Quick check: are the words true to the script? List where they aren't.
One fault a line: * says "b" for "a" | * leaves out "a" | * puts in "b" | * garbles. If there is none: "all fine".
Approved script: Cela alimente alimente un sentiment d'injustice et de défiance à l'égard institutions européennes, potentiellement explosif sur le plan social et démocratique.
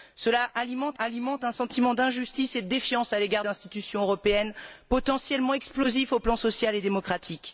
all fine